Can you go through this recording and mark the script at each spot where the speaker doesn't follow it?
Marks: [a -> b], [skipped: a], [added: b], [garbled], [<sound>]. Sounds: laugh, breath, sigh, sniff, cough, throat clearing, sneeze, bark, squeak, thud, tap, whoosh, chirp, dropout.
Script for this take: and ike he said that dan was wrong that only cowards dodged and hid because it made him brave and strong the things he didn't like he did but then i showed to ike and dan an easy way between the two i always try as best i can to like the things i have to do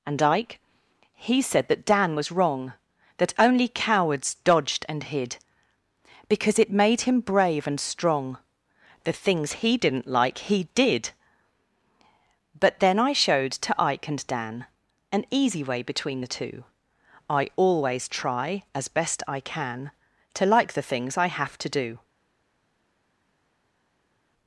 and ike he said that dan was wrong that only cowards dodged and hid because it made him brave and strong the things he didn't like he did but then i showed to ike and dan an easy way between the two i always try as best i can to like the things i have to do